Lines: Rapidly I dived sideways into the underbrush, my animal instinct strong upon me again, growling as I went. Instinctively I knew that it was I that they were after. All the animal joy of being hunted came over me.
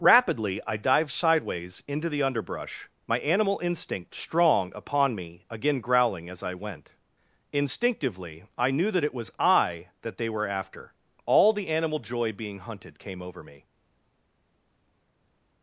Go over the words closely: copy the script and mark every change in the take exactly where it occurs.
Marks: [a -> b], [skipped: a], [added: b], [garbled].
Rapidly I dived sideways into the underbrush, my animal instinct strong upon me again, growling as I went. Instinctively I knew that it was I that they were after. All the animal joy [skipped: of] being hunted came over me.